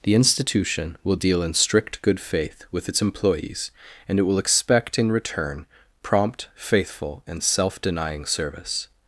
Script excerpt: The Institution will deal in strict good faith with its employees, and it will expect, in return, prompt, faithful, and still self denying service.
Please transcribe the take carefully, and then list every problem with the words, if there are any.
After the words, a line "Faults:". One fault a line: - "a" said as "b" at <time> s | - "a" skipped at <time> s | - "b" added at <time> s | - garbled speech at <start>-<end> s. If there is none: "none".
The Institution will deal in strict good faith with its employees, and it will expect, in return, prompt, faithful, and self denying service.
Faults:
- "still" skipped at 7.4 s